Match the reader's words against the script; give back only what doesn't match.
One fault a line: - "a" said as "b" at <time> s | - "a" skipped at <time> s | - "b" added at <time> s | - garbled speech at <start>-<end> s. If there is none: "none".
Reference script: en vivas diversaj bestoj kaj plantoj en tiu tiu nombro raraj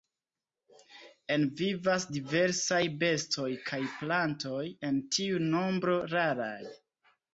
- "tiu" skipped at 5.4 s